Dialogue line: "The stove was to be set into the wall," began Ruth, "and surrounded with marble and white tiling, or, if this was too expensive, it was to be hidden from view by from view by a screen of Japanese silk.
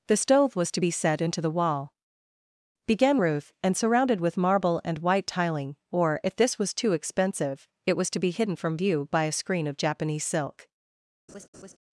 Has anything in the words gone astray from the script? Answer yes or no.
yes